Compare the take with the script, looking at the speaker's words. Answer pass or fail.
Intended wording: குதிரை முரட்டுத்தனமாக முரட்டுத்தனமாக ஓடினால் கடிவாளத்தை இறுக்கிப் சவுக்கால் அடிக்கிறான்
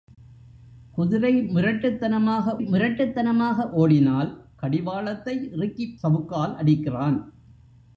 pass